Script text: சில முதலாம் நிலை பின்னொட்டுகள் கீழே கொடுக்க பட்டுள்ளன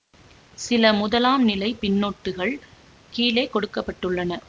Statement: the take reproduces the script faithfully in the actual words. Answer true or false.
true